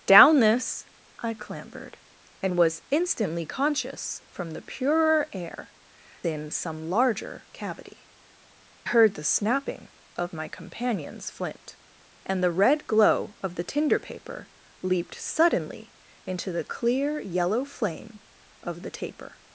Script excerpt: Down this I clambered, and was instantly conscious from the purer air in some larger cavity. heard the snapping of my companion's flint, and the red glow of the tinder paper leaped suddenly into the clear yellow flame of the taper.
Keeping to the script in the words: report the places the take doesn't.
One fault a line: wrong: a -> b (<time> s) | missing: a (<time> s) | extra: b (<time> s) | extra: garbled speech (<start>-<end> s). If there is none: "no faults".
no faults